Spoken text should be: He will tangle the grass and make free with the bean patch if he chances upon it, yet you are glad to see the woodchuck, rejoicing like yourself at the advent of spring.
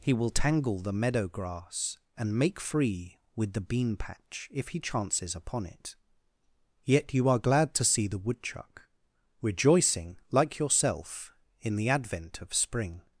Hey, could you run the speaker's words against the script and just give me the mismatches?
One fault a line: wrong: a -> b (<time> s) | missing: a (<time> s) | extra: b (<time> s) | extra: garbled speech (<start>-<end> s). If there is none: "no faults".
extra: meadow (0.9 s)
wrong: at -> in (11.6 s)